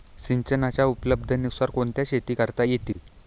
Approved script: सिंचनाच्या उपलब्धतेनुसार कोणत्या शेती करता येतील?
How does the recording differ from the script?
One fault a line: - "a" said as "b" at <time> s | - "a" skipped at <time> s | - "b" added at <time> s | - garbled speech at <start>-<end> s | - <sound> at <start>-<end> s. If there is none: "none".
- dropout at 2.9-3.0 s